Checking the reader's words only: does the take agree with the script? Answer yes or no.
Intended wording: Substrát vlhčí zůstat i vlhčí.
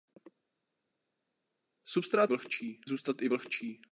yes